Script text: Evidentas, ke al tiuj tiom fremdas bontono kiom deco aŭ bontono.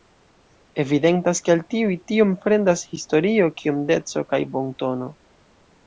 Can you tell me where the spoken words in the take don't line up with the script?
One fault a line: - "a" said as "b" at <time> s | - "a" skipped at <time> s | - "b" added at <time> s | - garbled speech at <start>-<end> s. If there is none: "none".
- "bontono" said as "historio" at 2.9 s
- "aŭ" said as "kaj" at 4.3 s